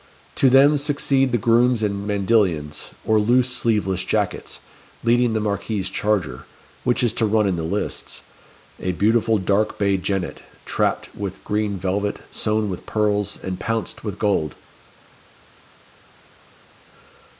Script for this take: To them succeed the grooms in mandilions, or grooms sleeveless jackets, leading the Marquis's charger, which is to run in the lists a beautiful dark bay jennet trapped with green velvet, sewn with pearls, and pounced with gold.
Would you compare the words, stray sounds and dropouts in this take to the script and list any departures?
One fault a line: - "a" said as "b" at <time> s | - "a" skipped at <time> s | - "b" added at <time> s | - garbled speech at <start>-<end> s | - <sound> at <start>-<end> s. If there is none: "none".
- "grooms" said as "loose" at 3.2 s